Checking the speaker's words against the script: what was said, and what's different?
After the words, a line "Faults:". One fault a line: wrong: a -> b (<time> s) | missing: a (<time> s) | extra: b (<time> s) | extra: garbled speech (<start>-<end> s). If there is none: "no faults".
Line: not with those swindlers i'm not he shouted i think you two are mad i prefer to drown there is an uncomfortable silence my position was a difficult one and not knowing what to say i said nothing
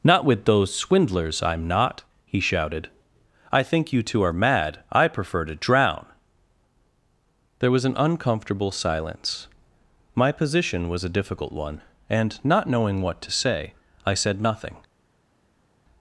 not with those swindlers i'm not he shouted i think you two are mad i prefer to drown there was an uncomfortable silence my position was a difficult one and not knowing what to say i said nothing
Faults:
wrong: is -> was (7.7 s)